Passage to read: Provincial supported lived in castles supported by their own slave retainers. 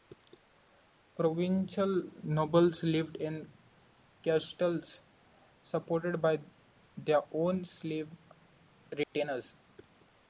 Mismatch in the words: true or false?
true